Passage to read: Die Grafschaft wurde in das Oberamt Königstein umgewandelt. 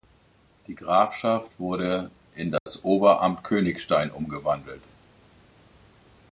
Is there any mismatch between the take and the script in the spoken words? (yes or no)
no